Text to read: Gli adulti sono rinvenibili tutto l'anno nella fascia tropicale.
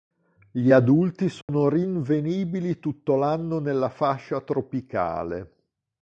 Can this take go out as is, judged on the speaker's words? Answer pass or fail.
pass